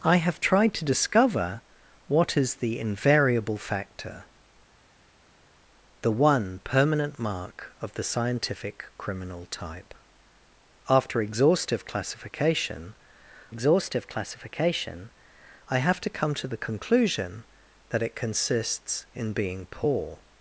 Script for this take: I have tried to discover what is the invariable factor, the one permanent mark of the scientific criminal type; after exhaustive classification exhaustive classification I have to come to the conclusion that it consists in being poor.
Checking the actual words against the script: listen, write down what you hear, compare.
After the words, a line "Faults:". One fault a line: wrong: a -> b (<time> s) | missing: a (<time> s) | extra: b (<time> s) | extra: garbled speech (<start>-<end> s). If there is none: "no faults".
I have tried to discover what is the invariable factor, the one permanent mark of the scientific criminal type; after exhaustive classification exhaustive classification I have to come to the conclusion that it consists in being poor.
Faults:
no faults